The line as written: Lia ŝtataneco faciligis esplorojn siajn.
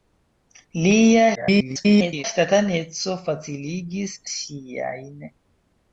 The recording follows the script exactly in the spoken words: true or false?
false